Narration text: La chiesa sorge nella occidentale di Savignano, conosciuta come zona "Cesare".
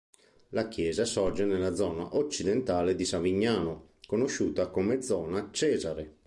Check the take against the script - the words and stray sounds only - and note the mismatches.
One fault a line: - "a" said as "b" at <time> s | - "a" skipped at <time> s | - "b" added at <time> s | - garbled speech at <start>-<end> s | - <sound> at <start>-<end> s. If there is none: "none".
- "zona" added at 1.7 s